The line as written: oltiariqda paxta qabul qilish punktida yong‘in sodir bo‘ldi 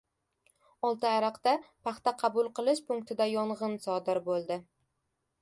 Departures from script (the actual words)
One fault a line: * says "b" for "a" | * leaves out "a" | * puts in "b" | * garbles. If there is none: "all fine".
all fine